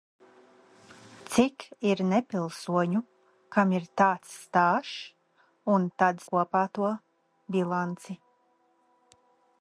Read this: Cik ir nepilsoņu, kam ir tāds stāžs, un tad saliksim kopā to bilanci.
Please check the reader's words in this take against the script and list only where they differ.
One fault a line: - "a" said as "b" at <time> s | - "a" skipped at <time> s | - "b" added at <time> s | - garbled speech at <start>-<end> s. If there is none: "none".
- "saliksim" skipped at 6.2 s